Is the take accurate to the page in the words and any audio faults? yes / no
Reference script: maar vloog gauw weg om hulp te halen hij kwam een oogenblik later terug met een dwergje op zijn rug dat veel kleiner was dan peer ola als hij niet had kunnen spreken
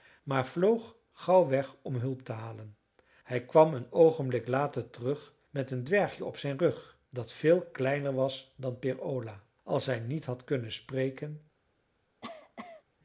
no